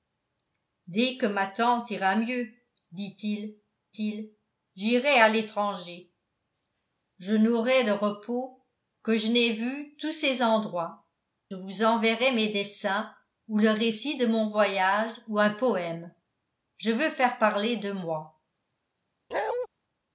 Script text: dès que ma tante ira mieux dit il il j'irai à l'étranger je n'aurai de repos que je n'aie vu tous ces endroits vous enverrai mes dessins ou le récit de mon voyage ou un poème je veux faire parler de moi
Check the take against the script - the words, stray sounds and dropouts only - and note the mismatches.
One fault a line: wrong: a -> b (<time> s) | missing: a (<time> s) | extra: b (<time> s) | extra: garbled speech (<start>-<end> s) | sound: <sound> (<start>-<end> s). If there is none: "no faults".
sound: bark (19.3-19.7 s)